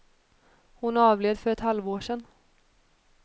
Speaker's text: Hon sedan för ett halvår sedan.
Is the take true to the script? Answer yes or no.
no